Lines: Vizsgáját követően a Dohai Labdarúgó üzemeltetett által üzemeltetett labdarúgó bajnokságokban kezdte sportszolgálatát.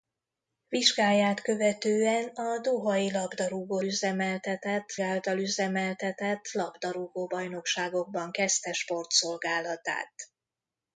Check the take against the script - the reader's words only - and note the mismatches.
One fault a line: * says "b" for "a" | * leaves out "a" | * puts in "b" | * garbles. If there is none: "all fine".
all fine